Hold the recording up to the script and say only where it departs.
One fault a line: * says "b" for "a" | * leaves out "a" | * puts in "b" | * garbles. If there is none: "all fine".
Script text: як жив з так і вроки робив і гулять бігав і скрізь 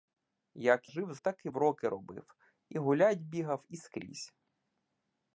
all fine